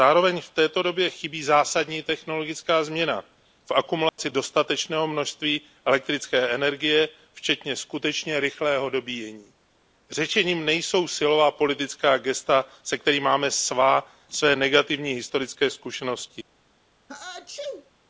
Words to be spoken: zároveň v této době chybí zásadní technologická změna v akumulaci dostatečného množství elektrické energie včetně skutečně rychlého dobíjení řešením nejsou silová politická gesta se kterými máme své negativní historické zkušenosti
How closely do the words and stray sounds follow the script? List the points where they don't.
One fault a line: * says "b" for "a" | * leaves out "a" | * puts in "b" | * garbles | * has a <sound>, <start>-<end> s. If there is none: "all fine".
* has a dropout, 4.1-4.2 s
* has a sneeze, 17.1-17.9 s